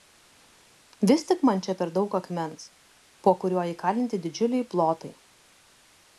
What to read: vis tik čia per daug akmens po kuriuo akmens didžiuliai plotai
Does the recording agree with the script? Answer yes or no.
no